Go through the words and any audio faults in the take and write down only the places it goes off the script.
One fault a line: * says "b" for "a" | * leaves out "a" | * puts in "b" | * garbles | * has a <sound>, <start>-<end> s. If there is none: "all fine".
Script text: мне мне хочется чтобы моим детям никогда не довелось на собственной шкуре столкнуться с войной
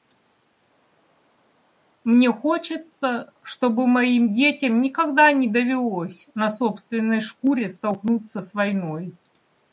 * leaves out "мне"